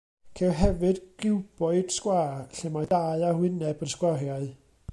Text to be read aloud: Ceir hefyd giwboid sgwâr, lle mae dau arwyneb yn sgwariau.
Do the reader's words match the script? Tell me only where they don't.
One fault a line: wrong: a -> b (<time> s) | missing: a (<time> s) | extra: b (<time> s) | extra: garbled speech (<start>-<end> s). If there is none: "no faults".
no faults